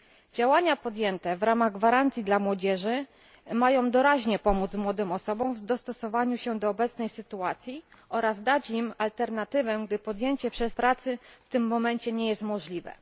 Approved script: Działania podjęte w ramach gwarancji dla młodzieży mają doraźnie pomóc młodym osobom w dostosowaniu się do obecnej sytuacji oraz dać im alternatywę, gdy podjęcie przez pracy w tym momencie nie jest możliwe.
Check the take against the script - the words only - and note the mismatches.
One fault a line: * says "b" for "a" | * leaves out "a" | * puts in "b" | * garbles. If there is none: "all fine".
all fine